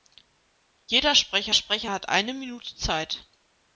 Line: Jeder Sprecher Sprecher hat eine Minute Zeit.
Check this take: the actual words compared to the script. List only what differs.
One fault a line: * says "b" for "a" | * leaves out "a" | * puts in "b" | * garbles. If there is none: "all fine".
all fine